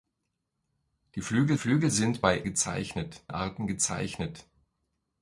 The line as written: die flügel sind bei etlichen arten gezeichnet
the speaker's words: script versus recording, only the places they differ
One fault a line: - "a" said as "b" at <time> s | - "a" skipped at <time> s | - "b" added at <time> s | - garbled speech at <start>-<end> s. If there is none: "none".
- "flügel" added at 1.6 s
- "etlichen" said as "gezeichnet" at 2.4 s